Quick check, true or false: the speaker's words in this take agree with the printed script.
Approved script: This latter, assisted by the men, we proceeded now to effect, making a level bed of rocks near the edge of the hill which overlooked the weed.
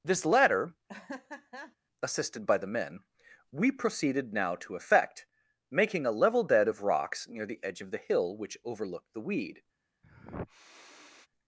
true